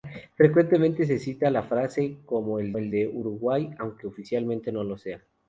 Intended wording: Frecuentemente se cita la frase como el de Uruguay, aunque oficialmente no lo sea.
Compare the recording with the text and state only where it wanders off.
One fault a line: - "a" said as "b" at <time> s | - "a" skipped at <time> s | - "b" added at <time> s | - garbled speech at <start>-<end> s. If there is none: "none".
- "el" added at 2.8 s